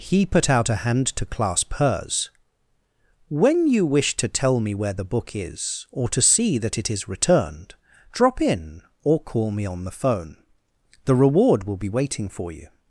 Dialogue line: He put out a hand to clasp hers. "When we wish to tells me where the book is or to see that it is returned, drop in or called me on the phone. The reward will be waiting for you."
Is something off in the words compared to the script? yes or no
yes